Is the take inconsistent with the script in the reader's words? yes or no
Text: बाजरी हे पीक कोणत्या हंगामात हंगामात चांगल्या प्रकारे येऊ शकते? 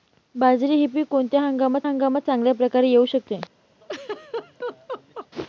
no